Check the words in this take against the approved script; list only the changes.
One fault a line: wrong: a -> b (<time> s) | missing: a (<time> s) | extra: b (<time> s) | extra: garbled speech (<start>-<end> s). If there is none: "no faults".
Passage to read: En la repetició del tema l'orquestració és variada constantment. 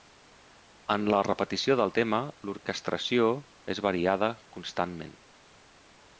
no faults